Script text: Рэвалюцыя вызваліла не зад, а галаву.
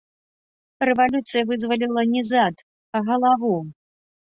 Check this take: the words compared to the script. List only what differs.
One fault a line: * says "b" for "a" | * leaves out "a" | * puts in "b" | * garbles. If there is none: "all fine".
all fine